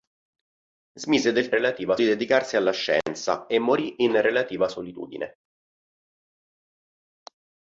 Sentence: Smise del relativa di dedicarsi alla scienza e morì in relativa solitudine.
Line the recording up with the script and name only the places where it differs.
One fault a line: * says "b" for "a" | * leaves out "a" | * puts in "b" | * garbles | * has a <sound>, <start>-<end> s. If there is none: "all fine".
all fine